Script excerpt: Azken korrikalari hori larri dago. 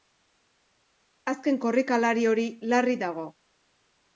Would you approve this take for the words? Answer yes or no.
yes